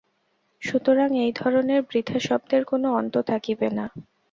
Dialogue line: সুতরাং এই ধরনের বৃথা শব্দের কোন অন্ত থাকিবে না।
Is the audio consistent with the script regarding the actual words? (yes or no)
yes